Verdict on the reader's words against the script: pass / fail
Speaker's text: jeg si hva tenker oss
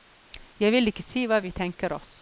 fail